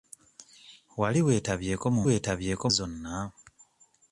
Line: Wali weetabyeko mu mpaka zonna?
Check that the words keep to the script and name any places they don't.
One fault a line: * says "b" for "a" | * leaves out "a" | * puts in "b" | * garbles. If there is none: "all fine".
* says "weetabyeko" for "mpaka"